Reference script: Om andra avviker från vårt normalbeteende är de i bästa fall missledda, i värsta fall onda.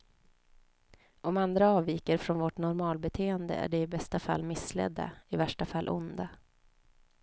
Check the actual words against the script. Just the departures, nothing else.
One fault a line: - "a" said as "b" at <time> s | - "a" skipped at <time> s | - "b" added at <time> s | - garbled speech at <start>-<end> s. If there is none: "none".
none